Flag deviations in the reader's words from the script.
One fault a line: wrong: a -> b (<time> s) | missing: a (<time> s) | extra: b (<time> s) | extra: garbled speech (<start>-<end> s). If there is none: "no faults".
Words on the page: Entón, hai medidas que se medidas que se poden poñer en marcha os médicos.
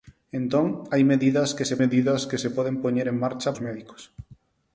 no faults